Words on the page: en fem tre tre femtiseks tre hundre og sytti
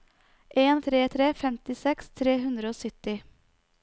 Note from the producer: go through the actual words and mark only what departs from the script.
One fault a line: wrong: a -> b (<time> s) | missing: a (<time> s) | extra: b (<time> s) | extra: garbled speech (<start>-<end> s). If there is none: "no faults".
missing: fem (0.8 s)